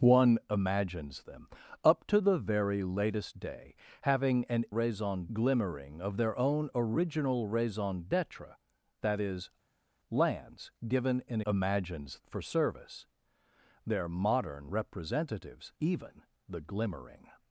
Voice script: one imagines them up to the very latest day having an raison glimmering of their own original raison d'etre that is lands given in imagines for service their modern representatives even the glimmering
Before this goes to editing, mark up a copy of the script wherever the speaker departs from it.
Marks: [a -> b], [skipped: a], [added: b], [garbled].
one imagines them up to the very latest day having an raison glimmering of their own original raison d'etre that is lands given in imagines for service their modern representatives even the glimmering